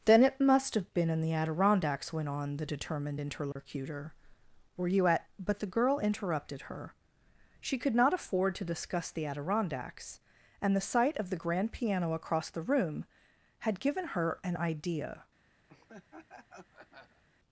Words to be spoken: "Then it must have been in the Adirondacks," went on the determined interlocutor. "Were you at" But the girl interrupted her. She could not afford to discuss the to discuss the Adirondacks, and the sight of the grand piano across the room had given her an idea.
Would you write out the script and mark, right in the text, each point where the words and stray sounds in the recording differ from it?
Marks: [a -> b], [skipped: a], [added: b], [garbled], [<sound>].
"Then it must have been in the Adirondacks," went on the determined interlocutor. [dropout] "Were you at" But the girl interrupted her. She could not afford to discuss the [skipped: to discuss the] Adirondacks, and the sight of the grand piano across the room had given her an idea. [laugh]